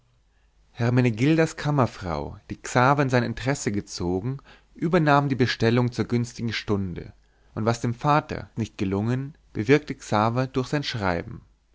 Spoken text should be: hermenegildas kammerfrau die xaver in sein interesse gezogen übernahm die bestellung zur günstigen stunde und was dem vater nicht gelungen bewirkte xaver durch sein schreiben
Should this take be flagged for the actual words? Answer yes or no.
no